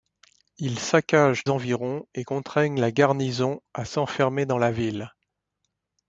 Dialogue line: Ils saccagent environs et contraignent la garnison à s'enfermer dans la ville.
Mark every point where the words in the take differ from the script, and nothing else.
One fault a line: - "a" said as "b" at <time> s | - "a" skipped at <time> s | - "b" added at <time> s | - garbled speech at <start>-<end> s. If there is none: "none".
none